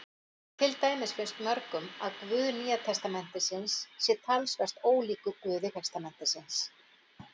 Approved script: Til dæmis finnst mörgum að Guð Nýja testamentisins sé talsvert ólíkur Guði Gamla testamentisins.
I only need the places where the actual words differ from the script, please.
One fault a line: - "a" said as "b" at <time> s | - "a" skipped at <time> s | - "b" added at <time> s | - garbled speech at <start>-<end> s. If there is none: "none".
- "Gamla" skipped at 5.7 s